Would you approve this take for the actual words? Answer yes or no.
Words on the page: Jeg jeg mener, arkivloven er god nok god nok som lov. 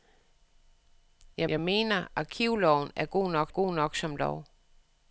yes